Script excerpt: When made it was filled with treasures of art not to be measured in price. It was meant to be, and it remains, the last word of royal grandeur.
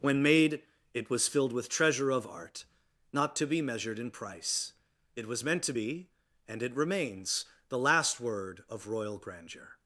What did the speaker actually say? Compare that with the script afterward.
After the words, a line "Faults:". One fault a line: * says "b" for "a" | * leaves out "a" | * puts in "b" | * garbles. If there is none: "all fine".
When made it was filled with treasure of art not to be measured in price. It was meant to be, and it remains, the last word of royal grandeur.
Faults:
* says "treasure" for "treasures"